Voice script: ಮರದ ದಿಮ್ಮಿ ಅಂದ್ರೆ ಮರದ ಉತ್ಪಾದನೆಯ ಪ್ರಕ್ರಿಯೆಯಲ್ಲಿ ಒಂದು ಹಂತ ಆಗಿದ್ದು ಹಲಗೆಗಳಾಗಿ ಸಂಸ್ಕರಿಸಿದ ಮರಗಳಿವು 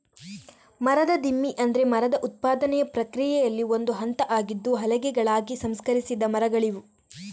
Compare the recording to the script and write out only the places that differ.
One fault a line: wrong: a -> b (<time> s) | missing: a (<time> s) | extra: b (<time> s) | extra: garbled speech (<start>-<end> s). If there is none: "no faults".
no faults